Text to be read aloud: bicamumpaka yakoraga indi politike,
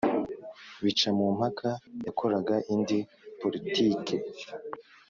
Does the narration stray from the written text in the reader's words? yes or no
no